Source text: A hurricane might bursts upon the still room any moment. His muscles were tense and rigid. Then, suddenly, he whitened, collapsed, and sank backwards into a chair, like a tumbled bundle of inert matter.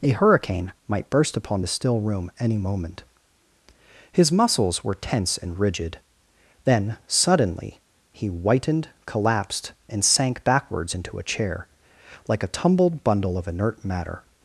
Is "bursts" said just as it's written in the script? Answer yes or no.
no